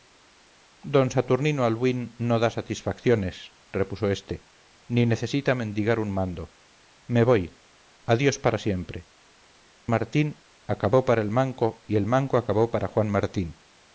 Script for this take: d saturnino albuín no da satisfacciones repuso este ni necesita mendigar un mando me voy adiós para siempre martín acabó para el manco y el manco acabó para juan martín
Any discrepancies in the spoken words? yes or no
no